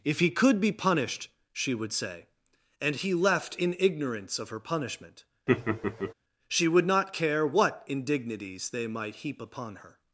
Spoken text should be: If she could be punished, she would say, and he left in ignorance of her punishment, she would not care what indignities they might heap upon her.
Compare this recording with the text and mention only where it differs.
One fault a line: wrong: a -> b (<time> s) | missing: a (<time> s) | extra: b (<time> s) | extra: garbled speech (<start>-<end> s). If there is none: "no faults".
wrong: she -> he (0.2 s)